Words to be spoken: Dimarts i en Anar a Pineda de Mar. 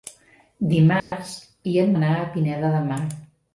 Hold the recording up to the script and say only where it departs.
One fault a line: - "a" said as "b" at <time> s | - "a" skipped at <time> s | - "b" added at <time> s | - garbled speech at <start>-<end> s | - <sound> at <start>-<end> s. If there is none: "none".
- dropout at 1.0-1.1 s